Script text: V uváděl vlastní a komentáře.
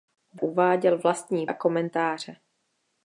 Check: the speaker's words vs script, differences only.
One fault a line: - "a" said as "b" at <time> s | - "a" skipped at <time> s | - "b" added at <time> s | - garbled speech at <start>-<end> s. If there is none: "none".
none